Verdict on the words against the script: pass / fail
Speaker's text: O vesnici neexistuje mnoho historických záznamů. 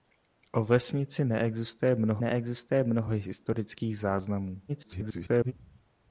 fail